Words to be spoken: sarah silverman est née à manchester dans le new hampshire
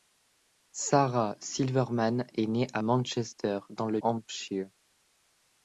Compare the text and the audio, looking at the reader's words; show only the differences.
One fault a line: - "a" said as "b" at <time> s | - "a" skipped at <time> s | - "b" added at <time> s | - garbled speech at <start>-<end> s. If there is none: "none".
- "new" skipped at 4.0 s